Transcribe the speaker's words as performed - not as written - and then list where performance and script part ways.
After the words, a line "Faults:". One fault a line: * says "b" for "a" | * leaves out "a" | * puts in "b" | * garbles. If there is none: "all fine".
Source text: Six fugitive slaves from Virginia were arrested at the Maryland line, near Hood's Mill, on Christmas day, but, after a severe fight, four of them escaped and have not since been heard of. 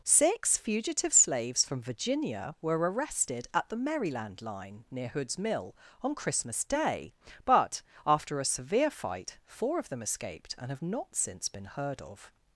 Six fugitive slaves from Virginia were arrested at the Maryland line, near Hood's Mill, on Christmas day, but, after a severe fight, four of them escaped and have not since been heard of.
Faults:
all fine